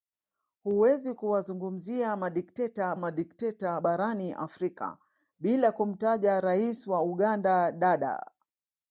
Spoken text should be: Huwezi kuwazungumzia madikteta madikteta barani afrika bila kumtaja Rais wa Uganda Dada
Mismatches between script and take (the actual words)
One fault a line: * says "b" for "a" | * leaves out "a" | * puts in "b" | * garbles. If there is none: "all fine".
all fine